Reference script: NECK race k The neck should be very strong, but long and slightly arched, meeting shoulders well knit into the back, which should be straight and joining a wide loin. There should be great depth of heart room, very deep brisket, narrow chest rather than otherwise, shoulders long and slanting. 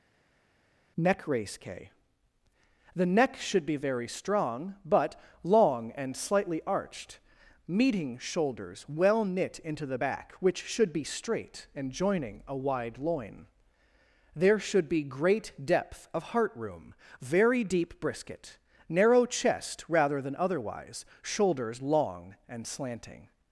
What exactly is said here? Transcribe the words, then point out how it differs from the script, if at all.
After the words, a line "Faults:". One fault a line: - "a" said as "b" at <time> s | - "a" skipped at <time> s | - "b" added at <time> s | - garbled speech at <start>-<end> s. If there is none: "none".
NECK race k The neck should be very strong, but long and slightly arched, meeting shoulders well knit into the back, which should be straight and joining a wide loin. There should be great depth of heart room, very deep brisket, narrow chest rather than otherwise, shoulders long and slanting.
Faults:
none